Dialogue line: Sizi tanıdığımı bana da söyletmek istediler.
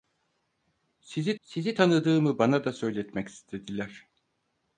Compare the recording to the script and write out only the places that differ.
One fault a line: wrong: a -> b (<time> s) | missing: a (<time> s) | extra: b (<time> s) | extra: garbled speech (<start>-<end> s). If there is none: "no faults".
extra: sizi (1.4 s)